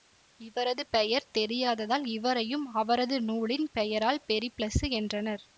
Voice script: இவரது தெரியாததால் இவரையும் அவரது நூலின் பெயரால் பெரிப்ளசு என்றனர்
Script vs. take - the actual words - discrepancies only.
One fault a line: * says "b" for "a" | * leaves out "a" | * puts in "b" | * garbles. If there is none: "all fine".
* puts in "பெயர்"